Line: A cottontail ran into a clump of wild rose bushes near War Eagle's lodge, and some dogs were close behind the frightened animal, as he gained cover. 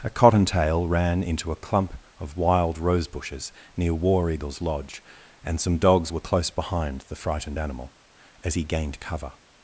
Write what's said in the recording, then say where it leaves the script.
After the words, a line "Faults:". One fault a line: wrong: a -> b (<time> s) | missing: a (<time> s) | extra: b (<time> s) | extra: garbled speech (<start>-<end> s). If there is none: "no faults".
A cottontail ran into a clump of wild rose bushes near War Eagle's lodge, and some dogs were close behind the frightened animal, as he gained cover.
Faults:
no faults